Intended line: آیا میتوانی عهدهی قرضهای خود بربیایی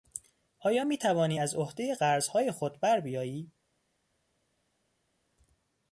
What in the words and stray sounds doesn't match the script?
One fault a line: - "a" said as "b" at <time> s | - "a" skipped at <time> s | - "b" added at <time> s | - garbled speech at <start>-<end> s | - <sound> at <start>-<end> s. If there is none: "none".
- "از" added at 1.4 s